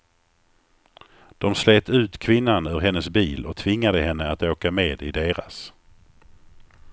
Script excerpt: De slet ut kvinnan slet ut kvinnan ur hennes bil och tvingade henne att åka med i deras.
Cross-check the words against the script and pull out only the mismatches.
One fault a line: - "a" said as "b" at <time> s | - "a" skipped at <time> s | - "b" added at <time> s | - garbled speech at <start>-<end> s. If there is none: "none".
- "slet ut kvinnan" skipped at 2.7 s